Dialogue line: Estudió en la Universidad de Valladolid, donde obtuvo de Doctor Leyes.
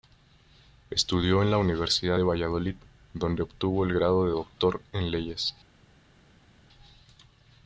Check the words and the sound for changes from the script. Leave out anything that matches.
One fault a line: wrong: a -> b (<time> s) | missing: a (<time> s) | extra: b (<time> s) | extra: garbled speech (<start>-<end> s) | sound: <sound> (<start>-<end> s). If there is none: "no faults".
extra: el grado (3.8 s)
extra: en (4.9 s)